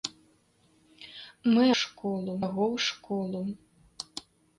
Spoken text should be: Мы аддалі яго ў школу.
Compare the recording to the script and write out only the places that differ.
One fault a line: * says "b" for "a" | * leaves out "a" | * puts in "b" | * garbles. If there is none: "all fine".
* says "школу" for "аддалі"